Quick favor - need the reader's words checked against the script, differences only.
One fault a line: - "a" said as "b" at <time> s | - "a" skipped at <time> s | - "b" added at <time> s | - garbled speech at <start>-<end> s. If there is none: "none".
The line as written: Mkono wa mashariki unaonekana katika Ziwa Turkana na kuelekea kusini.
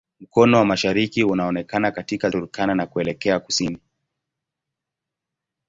- "Ziwa" skipped at 2.3 s